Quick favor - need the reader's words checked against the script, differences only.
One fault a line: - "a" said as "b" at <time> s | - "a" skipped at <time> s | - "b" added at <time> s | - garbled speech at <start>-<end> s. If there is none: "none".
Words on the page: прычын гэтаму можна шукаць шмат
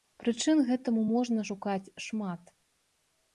none